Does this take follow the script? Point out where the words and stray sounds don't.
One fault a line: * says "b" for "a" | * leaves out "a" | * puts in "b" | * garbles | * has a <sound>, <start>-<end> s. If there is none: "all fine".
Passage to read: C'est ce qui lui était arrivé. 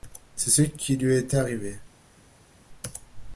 all fine